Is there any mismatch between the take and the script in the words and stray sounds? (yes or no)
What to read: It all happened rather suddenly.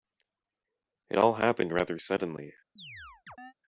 yes